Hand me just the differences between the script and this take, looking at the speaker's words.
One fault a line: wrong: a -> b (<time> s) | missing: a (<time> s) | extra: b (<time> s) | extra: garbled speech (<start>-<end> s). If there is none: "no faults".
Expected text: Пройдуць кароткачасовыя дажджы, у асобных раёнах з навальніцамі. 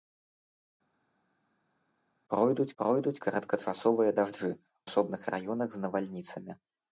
extra: пройдуць (2.8 s)
missing: у (4.5 s)